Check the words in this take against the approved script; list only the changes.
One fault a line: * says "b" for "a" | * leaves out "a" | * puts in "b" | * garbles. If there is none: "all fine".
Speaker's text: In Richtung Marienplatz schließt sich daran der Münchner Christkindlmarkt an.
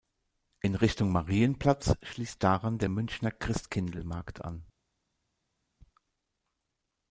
* leaves out "sich"